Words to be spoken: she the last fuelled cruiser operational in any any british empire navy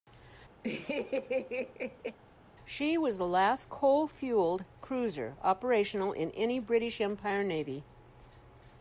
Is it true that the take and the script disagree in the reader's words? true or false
true